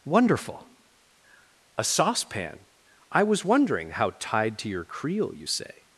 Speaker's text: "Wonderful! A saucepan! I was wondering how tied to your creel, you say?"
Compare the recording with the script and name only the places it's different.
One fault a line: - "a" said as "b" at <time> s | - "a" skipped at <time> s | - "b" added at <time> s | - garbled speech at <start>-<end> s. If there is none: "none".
none